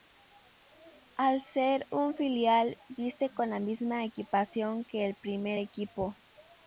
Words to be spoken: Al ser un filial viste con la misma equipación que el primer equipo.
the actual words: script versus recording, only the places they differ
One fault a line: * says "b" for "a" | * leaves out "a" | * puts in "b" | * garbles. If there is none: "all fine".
all fine